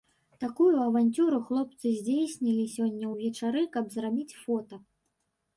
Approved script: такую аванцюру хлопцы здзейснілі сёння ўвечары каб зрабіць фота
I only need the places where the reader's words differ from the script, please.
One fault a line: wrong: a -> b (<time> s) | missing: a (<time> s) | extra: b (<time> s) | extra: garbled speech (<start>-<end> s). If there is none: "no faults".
no faults